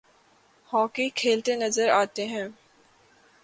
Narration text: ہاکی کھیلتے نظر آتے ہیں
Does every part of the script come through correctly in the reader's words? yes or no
yes